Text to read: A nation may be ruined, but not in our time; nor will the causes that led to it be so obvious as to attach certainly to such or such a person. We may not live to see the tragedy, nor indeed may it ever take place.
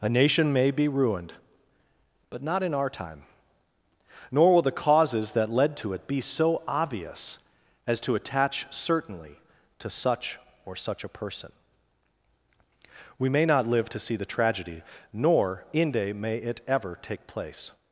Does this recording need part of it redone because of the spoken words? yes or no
yes